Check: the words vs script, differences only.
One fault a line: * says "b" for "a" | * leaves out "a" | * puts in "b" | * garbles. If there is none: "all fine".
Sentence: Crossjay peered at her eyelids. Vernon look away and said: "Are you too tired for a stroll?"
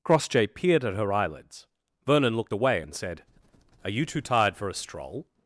* says "looked" for "look"